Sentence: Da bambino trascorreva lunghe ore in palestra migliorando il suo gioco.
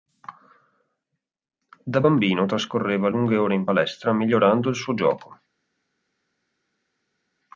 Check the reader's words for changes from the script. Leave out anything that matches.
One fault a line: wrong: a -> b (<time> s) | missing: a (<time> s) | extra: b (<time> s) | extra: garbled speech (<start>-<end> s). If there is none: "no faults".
no faults